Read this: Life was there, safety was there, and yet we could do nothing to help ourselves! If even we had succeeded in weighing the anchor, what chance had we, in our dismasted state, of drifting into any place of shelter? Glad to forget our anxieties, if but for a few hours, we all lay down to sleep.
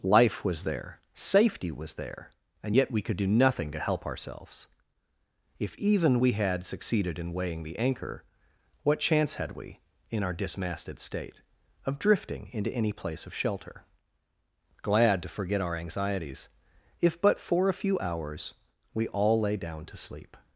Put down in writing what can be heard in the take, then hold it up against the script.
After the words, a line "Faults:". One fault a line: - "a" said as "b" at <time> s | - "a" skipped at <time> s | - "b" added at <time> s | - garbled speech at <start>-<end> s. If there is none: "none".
Life was there, safety was there, and yet we could do nothing to help ourselves! If even we had succeeded in weighing the anchor, what chance had we, in our dismasted state, of drifting into any place of shelter? Glad to forget our anxieties, if but for a few hours, we all lay down to sleep.
Faults:
none